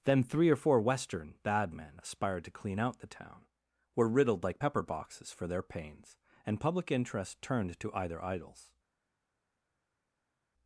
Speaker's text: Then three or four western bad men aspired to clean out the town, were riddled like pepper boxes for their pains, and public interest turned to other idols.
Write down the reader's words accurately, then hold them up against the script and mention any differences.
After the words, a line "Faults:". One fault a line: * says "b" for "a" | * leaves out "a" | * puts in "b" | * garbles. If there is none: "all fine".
Then three or four western bad men aspired to clean out the town, were riddled like pepper boxes for their pains, and public interest turned to either idols.
Faults:
* says "either" for "other"